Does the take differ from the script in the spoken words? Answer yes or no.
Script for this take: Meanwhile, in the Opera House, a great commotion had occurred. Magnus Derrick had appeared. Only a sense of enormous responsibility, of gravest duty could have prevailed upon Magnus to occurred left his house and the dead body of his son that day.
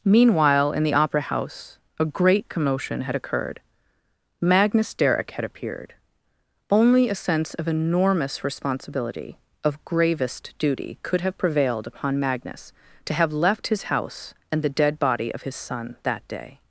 yes